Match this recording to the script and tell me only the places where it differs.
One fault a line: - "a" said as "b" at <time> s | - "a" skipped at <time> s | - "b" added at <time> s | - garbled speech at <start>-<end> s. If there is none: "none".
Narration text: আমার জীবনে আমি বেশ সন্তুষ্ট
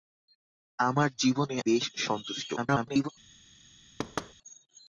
- "আমি" skipped at 1.6 s
- garbled speech at 2.6-3.1 s